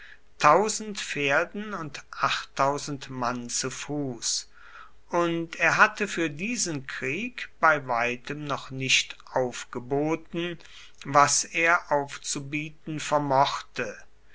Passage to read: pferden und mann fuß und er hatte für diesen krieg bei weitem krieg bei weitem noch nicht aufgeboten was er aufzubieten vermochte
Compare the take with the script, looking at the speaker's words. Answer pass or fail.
fail